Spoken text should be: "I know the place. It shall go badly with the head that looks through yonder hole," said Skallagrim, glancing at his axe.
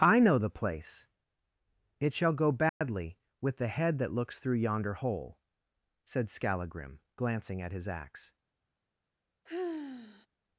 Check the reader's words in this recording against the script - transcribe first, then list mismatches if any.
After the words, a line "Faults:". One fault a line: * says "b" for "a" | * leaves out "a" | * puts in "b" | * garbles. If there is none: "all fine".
"I know the place. It shall go badly with the head that looks through yonder hole," said Skallagrim, glancing at his axe.
Faults:
all fine